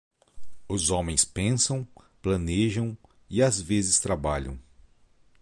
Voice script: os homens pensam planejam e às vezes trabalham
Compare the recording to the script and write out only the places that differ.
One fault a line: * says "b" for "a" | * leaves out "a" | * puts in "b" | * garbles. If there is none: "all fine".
all fine